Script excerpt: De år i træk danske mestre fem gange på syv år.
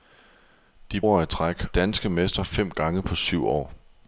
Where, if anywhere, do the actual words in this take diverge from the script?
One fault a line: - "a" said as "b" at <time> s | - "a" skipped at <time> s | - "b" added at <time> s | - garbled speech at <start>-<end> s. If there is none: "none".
none